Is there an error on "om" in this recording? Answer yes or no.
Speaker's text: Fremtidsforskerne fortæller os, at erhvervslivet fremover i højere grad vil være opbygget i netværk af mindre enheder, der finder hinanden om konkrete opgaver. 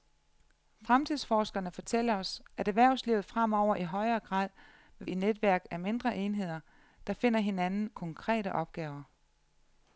yes